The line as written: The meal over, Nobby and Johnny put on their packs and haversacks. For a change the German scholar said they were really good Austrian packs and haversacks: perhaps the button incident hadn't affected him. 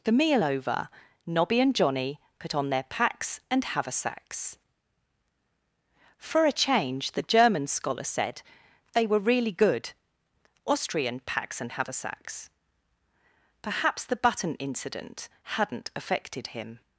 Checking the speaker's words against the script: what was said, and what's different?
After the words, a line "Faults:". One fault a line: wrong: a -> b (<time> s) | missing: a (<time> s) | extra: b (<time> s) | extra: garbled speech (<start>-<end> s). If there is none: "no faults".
The meal over, Nobby and Johnny put on their packs and haversacks. For a change the German scholar said they were really good Austrian packs and haversacks: perhaps the button incident hadn't affected him.
Faults:
no faults